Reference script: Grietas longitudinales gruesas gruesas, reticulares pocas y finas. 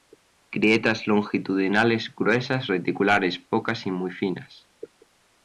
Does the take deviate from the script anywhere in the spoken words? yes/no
yes